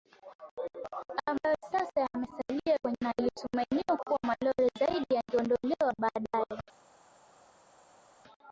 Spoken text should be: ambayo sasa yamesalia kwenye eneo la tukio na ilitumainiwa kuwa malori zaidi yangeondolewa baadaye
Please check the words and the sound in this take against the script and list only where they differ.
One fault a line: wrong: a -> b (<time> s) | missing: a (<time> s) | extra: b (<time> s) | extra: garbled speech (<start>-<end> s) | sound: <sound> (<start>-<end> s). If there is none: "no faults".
missing: eneo la tukio (3.0 s)